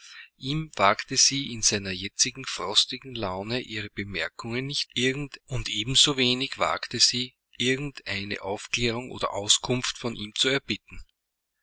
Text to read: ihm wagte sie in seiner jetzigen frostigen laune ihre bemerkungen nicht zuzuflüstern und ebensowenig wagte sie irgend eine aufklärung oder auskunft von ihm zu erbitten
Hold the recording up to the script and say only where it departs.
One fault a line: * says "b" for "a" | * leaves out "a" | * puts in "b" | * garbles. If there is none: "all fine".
* says "irgend" for "zuzuflüstern"